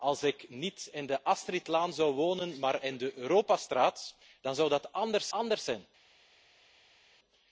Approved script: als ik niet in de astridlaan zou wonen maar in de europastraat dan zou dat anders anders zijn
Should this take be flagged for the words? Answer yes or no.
no